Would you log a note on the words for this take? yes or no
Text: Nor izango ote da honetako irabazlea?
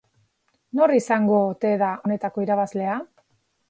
no